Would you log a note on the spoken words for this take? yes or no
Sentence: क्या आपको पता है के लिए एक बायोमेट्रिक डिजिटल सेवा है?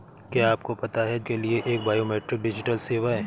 no